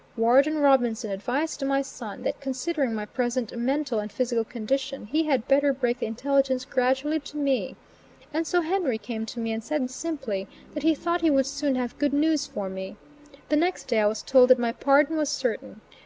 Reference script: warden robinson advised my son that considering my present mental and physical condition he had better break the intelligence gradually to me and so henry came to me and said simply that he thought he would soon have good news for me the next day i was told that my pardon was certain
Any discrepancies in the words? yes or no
no